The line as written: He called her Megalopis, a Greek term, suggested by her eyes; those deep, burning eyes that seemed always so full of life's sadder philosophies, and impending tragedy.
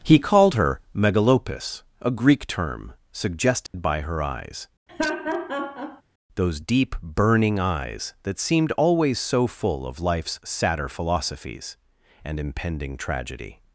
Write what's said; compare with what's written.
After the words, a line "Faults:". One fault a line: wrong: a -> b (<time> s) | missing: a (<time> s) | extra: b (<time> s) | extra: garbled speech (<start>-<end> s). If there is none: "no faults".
He called her Megalopis, a Greek term, suggested by her eyes; those deep, burning eyes that seemed always so full of life's sadder philosophies, and impending tragedy.
Faults:
no faults